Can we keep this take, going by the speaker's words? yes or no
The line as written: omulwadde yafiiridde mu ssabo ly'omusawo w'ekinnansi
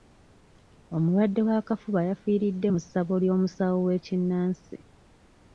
no